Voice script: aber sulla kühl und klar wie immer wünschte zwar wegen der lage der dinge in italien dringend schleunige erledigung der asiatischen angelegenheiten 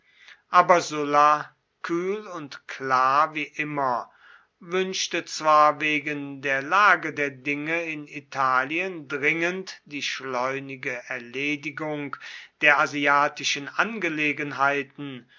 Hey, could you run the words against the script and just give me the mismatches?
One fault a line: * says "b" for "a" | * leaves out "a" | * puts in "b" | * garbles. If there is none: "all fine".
* puts in "die"